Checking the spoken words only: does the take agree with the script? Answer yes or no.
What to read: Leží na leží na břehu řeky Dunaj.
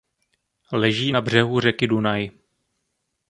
no